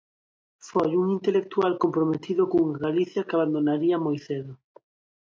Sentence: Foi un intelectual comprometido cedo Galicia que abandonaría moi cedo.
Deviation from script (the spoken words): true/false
true